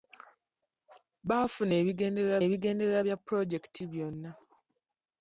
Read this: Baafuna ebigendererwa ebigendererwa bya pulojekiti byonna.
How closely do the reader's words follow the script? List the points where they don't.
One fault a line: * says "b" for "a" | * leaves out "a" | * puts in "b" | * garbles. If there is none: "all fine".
all fine